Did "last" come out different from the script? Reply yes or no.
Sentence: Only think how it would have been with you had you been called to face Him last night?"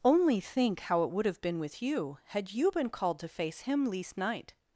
yes